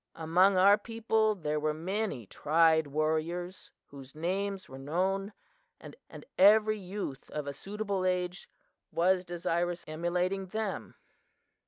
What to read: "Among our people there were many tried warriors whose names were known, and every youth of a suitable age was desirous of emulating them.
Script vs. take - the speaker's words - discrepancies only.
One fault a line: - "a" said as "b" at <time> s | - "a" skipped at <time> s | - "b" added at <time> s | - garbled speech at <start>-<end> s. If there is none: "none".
- "and" added at 6.1 s
- "of" skipped at 9.9 s